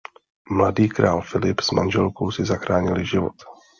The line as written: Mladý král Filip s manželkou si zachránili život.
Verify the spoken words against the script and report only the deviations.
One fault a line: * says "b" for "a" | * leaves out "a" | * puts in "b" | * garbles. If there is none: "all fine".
all fine